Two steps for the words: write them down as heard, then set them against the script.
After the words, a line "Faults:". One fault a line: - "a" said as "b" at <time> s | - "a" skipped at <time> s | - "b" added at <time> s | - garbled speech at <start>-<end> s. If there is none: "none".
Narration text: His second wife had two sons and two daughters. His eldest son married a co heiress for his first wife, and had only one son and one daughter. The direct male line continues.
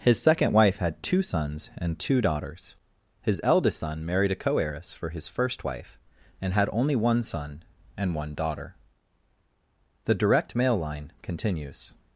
His second wife had two sons and two daughters. His eldest son married a co heiress for his first wife, and had only one son and one daughter. The direct male line continues.
Faults:
none